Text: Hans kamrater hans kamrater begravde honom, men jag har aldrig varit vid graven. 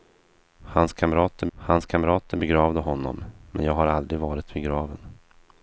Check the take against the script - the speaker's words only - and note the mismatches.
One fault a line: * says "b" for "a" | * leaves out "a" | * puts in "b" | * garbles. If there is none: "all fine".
all fine